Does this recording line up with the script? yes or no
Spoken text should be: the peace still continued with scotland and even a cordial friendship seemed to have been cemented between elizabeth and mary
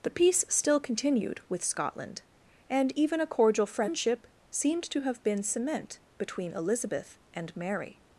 no